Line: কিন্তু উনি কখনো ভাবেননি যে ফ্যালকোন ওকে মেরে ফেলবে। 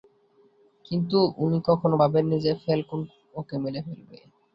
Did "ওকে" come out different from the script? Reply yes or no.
no